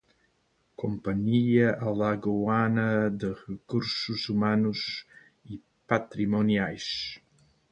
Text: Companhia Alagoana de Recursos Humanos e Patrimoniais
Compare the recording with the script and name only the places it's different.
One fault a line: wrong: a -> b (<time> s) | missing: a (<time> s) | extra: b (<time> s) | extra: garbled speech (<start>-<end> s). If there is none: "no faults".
no faults